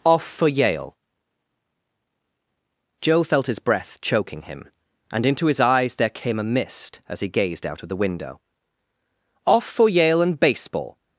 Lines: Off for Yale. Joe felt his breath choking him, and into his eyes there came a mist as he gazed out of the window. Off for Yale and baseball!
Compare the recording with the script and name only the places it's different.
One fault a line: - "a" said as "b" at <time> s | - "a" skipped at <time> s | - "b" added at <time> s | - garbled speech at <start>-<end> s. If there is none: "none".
none